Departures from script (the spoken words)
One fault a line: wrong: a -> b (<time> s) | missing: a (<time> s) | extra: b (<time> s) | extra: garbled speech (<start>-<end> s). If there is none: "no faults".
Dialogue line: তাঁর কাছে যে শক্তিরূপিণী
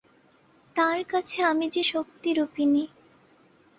extra: আমি (1.4 s)